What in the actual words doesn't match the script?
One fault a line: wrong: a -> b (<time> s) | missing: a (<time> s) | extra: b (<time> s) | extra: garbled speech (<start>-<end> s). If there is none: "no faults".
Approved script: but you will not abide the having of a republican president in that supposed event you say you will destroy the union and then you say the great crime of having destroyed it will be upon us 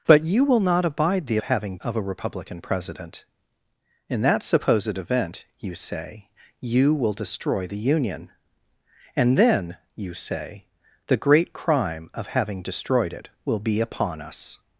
no faults